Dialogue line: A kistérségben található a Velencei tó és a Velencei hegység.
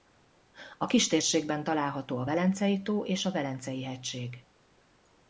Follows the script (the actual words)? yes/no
yes